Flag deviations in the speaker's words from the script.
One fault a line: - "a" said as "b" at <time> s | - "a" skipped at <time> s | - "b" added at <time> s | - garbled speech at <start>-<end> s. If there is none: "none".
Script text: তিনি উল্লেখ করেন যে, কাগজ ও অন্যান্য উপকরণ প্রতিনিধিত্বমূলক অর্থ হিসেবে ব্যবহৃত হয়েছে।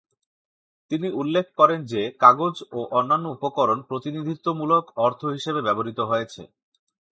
none